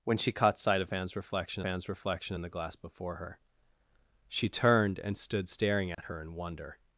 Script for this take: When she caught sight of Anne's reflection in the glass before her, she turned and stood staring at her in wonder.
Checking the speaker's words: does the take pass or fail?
fail